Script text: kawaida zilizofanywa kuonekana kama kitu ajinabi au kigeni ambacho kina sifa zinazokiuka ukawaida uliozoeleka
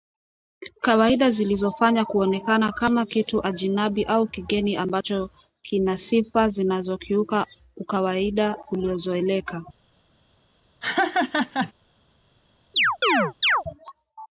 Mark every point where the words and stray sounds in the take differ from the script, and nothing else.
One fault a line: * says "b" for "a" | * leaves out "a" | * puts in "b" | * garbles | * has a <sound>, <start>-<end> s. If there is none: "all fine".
* has a laugh, 10.8-11.7 s
* has a chirp, 12.7-13.6 s